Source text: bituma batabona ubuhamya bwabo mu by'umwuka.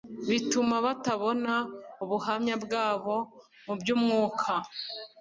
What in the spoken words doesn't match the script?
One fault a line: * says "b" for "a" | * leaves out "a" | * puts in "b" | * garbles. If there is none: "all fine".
all fine